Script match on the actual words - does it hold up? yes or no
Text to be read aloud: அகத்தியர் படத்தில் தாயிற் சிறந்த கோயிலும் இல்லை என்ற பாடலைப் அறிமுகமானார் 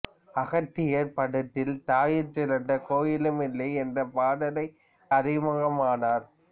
yes